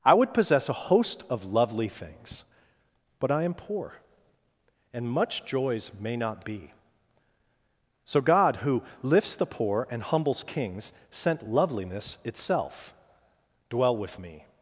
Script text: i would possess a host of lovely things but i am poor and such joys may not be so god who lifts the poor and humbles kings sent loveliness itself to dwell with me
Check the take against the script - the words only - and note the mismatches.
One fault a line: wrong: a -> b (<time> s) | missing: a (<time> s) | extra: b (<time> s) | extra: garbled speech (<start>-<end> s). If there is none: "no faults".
wrong: such -> much (5.1 s)
missing: to (12.9 s)